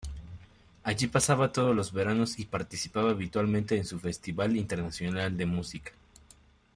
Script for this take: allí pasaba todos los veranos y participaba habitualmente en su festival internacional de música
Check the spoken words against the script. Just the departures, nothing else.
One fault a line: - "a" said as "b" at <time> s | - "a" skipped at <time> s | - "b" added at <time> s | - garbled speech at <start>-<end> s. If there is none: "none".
none